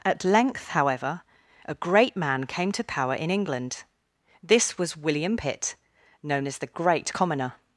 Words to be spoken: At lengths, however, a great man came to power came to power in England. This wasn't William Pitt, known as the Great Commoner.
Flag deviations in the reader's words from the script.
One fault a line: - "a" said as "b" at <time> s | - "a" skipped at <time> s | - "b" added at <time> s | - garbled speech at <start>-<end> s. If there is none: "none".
- "lengths" said as "length" at 0.2 s
- "came to power" skipped at 3.1 s
- "wasn't" said as "was" at 4.8 s